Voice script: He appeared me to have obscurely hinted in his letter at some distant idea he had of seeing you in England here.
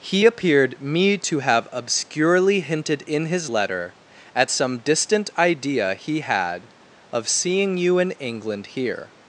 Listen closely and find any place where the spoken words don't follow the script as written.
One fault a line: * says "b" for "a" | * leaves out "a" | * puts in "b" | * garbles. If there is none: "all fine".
all fine